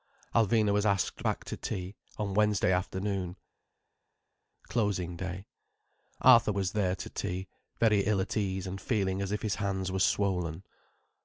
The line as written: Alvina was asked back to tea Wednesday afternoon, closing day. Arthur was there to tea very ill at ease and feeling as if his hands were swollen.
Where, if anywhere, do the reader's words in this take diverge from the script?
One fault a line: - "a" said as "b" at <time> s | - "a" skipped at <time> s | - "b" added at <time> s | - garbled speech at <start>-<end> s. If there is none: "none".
- "on" added at 2.2 s